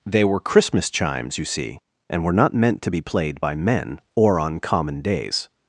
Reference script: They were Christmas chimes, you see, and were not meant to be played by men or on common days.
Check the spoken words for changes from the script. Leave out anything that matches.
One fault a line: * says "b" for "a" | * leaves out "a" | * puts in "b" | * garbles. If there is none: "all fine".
all fine